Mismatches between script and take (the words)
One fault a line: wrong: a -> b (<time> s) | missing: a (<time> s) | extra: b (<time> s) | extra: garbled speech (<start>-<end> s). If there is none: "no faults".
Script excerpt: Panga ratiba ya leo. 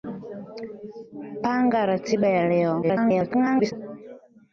extra: garbled speech (2.8-3.7 s)